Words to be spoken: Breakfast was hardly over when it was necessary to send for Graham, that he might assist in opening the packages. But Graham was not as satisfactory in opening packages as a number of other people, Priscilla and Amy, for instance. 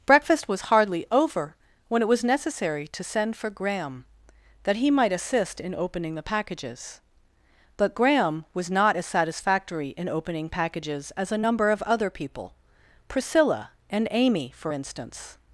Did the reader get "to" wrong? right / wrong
right